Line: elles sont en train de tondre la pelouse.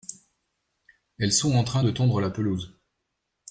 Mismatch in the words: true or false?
false